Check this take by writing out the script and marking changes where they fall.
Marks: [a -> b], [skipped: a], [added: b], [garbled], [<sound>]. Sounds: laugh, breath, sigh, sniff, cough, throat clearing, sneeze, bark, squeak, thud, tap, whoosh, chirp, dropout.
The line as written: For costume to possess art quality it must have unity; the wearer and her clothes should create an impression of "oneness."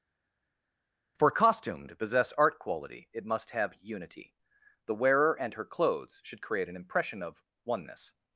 For costume to possess art quality it must have unity; the wearer and her clothes should create an impression of "oneness."